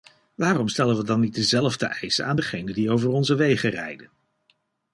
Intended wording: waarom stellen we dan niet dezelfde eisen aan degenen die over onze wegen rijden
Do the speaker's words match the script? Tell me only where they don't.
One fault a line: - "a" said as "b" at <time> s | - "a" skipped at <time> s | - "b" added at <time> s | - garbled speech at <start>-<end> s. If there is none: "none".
none